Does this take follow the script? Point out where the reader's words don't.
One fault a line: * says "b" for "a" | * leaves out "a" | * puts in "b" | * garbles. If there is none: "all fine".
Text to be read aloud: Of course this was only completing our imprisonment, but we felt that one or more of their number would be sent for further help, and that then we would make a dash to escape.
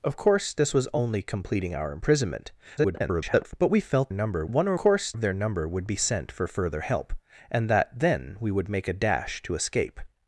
* garbles
* says "number" for "that"
* says "course" for "more"